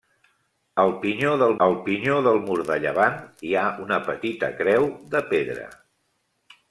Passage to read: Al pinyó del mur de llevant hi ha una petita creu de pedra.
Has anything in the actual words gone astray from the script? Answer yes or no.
yes